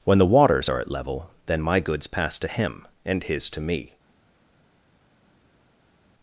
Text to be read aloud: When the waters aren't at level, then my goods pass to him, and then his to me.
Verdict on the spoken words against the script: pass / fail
fail